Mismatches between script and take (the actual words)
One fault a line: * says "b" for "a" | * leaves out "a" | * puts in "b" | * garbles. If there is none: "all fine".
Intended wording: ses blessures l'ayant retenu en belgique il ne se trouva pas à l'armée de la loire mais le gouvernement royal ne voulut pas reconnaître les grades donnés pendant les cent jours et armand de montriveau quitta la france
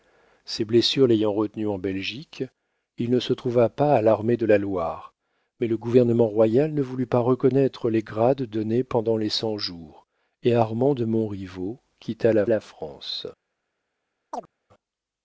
* puts in "la"